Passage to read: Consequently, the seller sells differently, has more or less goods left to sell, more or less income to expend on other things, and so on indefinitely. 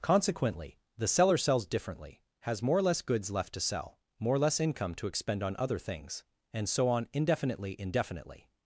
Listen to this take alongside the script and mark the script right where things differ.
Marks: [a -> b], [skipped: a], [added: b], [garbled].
Consequently, the seller sells differently, has more or less goods left to sell, more or less income to expend on other things, and so on indefinitely. [added: indefinitely]